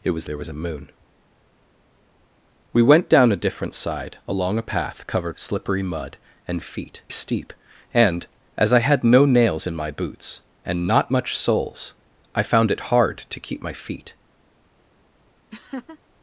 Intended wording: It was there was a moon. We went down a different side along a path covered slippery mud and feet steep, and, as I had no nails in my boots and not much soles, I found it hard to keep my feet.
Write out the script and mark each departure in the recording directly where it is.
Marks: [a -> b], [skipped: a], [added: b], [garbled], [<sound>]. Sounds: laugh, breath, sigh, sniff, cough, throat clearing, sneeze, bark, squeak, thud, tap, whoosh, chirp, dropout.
It was there was a moon. We went down a different side along a path covered slippery mud and feet steep, and, as I had no nails in my boots and not much soles, I found it hard to keep my feet. [laugh]